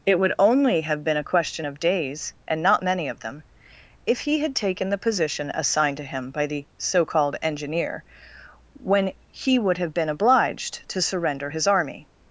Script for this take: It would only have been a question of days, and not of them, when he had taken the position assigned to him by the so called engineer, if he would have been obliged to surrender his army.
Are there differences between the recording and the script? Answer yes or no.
yes